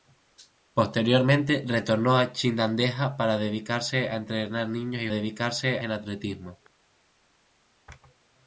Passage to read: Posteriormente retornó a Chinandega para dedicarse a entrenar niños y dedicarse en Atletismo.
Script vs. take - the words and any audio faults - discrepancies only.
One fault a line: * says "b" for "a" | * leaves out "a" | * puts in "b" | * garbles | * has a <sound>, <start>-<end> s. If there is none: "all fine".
all fine